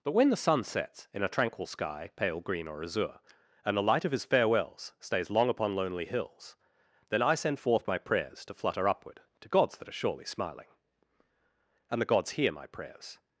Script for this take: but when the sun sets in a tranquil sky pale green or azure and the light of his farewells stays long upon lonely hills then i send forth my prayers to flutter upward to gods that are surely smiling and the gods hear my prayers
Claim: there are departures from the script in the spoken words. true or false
false